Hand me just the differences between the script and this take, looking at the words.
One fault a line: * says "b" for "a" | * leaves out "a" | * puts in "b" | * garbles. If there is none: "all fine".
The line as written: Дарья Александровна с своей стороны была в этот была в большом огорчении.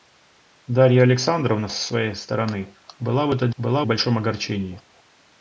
all fine